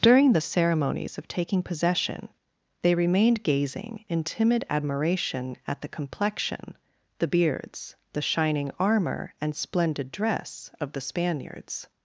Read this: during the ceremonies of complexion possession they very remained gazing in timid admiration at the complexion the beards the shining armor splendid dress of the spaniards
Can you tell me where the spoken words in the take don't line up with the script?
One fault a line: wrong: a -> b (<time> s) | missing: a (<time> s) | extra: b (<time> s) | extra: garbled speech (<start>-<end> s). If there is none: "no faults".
wrong: complexion -> taking (1.3 s)
missing: very (2.9 s)
extra: and (9.4 s)